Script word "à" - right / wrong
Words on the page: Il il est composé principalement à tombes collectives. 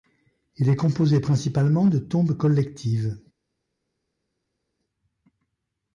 wrong